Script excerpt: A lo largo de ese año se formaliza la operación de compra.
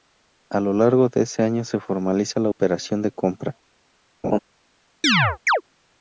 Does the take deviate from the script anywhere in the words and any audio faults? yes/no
yes